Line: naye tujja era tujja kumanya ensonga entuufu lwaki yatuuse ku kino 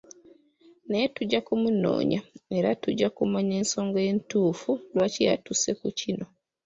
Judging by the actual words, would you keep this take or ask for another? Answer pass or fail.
fail